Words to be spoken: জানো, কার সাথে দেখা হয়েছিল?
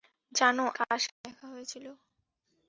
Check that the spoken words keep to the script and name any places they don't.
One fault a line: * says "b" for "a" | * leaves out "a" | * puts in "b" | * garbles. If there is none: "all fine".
all fine